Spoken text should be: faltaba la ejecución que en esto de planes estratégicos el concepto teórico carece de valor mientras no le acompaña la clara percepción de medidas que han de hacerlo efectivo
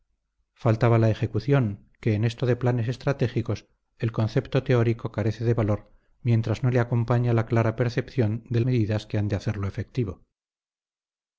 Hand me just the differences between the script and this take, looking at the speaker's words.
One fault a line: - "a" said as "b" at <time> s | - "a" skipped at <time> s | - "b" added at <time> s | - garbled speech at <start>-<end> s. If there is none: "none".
none